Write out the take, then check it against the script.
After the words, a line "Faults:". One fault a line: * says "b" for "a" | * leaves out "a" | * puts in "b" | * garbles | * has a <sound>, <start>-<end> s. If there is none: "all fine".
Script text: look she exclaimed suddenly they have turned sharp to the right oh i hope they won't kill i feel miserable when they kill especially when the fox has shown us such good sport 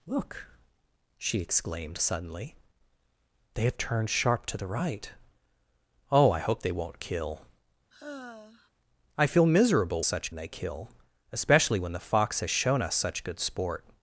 look she exclaimed suddenly they have turned sharp to the right oh i hope they won't kill i feel miserable such they kill especially when the fox has shown us such good sport
Faults:
* has a sigh, 7.9-8.7 s
* says "such" for "when"